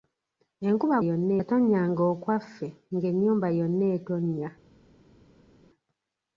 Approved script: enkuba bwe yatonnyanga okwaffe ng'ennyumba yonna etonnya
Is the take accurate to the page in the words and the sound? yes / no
no